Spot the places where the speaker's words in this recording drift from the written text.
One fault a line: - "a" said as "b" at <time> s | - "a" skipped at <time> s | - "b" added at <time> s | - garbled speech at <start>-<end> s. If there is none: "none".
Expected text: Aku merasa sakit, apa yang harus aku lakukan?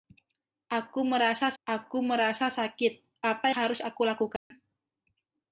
- "aku merasa" added at 1.6 s
- "yang" skipped at 3.5 s